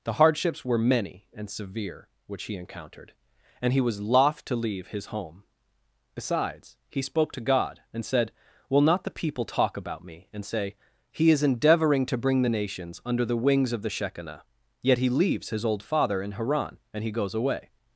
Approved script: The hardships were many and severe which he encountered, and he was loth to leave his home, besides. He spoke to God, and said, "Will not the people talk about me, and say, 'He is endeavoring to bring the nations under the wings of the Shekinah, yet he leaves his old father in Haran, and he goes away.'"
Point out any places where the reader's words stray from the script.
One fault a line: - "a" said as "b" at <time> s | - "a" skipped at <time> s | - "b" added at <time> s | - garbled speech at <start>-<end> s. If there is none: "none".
none